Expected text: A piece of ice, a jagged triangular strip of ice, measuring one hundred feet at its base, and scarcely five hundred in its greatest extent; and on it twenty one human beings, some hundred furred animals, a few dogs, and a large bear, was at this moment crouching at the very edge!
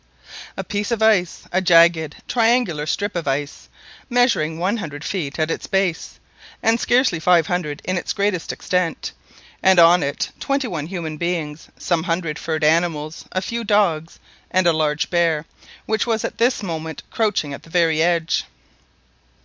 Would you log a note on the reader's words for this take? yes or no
yes